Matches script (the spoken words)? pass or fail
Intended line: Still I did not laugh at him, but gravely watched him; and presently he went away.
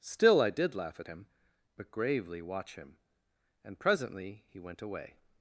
fail